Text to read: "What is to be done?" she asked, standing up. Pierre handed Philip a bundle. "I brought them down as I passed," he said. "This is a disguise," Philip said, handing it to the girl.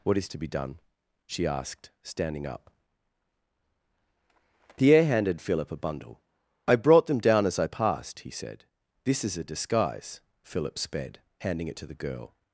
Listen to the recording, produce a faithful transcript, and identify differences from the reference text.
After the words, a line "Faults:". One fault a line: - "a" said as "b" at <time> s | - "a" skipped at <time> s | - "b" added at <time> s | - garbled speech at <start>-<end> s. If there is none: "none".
"What is to be done?" she asked, standing up. Pierre handed Philip a bundle. "I brought them down as I passed," he said. "This is a disguise," Philip sped, handing it to the girl.
Faults:
- "said" said as "sped" at 10.8 s